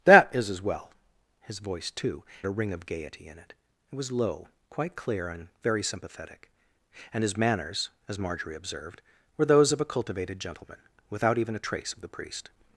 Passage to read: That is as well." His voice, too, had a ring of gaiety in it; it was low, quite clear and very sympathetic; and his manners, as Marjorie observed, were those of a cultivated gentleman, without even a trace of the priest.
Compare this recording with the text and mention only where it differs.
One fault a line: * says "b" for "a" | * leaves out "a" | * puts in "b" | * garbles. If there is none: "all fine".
* leaves out "had"